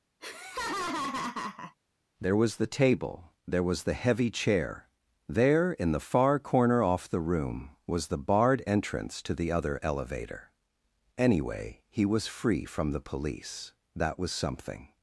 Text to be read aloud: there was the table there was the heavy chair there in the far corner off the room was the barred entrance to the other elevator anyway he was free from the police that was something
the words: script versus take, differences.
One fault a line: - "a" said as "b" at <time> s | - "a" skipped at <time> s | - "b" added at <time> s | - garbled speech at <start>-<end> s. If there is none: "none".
none